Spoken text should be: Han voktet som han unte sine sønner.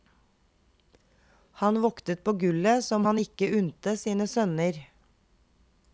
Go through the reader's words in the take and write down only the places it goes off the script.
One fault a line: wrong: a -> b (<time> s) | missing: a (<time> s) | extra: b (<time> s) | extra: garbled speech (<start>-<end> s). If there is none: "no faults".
extra: på gullet (2.2 s)
extra: ikke (3.2 s)